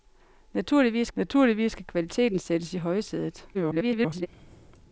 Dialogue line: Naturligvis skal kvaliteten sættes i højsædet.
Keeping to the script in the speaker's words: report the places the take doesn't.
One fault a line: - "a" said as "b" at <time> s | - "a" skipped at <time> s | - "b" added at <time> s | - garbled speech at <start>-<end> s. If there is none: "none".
- "naturligvis" added at 1.1 s
- garbled speech at 3.5-4.3 s